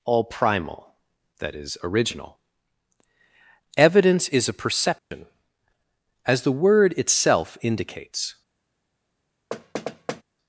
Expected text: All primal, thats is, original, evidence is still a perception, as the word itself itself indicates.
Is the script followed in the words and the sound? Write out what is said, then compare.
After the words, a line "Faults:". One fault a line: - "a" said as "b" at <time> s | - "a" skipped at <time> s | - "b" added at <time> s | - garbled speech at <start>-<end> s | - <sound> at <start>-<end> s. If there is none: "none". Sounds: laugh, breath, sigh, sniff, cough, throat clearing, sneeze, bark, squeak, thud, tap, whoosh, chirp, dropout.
All primal, that is, original, evidence is a perception, as the word itself indicates.
Faults:
- "thats" said as "that" at 1.4 s
- "still" skipped at 4.5 s
- dropout at 5.0-5.1 s
- "itself" skipped at 7.6 s
- thud at 9.5-10.2 s